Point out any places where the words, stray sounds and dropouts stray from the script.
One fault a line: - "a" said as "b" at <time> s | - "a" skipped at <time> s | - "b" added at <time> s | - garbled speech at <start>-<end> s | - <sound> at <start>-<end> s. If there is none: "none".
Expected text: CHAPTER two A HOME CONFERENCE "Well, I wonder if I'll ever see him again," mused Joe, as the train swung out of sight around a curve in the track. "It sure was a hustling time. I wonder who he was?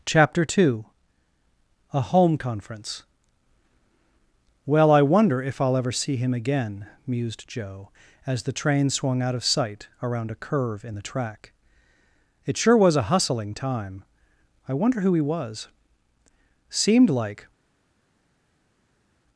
- "Seemed like" added at 16.7 s